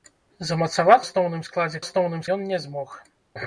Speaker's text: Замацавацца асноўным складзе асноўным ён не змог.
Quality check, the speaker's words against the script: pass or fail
pass